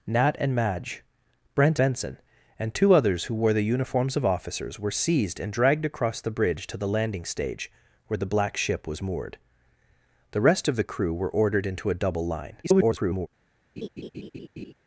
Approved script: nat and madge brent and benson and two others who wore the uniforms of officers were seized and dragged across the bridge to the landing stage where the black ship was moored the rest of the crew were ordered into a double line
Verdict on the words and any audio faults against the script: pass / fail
fail